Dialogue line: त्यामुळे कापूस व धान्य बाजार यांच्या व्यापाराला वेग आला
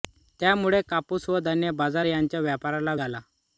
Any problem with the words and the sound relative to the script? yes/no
yes